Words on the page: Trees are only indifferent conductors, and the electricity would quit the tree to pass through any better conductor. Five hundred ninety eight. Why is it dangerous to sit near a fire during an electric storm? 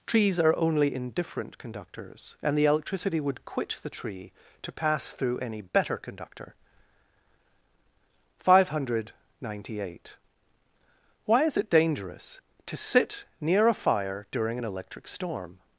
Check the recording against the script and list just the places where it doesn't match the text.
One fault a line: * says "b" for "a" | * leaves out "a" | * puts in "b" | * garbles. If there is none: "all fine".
all fine